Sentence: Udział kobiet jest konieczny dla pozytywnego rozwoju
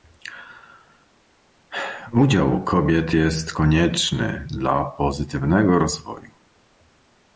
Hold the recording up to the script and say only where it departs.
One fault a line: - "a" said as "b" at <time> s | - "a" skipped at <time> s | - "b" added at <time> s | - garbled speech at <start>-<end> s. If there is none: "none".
none